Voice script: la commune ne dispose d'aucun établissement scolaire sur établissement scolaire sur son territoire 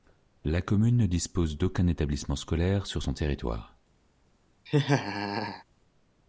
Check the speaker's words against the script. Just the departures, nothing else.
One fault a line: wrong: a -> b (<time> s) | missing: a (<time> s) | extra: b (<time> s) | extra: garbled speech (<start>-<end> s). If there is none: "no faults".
missing: établissement scolaire sur (3.0 s)